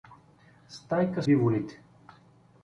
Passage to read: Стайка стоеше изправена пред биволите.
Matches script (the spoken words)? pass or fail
fail